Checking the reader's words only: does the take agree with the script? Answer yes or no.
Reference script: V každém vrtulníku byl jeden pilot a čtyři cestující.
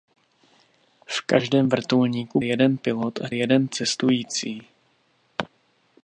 no